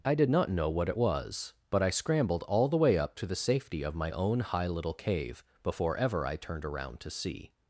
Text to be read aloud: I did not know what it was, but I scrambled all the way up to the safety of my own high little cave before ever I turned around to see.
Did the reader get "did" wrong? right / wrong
right